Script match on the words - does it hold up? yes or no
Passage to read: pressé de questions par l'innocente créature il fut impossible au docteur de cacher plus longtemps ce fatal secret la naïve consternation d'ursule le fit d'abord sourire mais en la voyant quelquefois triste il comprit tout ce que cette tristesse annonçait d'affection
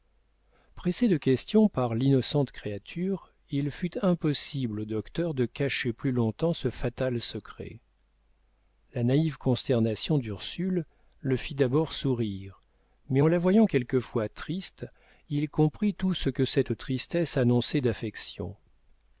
yes